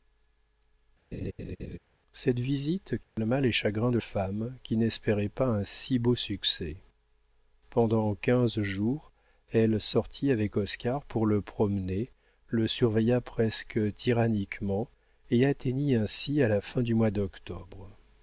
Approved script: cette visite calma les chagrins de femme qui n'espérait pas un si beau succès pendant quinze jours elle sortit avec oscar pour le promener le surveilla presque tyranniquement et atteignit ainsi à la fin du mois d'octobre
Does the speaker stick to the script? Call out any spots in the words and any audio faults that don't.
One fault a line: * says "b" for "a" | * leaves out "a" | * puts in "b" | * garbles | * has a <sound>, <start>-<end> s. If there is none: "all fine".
* has a laugh, 1.1-1.8 s
* has a dropout, 3.0-3.2 s